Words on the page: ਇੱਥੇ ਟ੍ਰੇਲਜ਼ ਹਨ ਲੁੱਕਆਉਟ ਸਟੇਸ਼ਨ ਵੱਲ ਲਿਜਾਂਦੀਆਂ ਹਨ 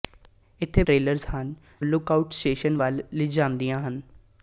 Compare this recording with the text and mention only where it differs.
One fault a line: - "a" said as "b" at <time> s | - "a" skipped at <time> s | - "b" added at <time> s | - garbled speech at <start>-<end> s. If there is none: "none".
none